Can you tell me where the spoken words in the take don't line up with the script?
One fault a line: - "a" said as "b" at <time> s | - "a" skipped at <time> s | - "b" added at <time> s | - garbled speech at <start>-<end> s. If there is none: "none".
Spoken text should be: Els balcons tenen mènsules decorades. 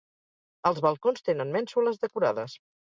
none